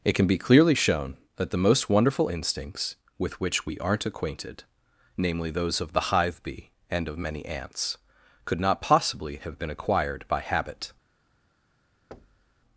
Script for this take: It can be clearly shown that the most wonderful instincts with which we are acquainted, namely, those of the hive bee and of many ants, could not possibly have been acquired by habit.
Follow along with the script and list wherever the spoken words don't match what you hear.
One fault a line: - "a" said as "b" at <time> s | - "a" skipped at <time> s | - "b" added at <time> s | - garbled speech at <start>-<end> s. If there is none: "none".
- "are" said as "aren't" at 3.8 s